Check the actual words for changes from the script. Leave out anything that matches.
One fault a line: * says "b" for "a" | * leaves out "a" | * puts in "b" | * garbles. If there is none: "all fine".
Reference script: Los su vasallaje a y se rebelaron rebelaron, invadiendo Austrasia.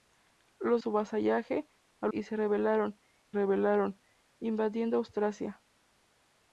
all fine